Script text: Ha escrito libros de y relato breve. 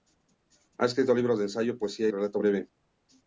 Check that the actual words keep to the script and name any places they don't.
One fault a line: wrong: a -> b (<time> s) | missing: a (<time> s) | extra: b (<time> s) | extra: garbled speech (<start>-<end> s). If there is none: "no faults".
extra: ensayo poesía (1.4 s)